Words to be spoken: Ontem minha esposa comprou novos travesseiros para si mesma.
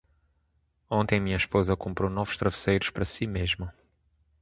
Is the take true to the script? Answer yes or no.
yes